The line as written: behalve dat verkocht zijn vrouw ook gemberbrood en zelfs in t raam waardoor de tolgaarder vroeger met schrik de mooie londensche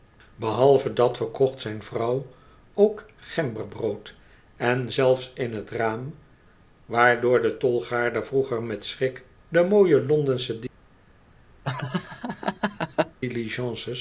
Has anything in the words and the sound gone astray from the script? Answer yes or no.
yes